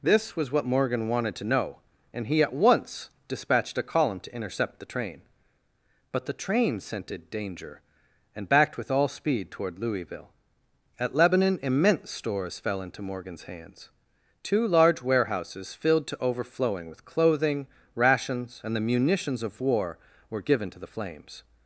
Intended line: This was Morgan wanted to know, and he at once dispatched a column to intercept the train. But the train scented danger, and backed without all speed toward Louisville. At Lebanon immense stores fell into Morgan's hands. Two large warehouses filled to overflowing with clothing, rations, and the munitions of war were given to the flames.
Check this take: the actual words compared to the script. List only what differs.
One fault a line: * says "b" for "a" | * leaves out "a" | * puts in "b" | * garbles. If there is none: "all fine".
* puts in "what"
* says "with" for "without"